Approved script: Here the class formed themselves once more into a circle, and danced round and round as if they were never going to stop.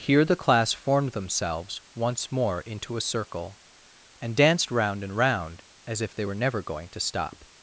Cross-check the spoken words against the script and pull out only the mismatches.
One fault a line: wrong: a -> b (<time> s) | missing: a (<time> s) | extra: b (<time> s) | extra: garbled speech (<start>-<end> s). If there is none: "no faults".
no faults